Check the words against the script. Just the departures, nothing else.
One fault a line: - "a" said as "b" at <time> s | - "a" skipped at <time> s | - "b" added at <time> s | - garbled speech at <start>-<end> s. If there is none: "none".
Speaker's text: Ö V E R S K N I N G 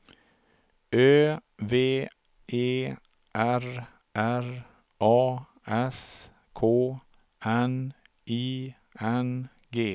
- "R A" added at 4.1 s